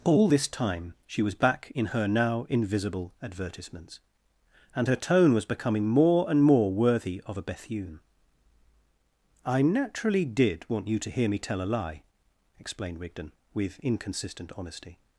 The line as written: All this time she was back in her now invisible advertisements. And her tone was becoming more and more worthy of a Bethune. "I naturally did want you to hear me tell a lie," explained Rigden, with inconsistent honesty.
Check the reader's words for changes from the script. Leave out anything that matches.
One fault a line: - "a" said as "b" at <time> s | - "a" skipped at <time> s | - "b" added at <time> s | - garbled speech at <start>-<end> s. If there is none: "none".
none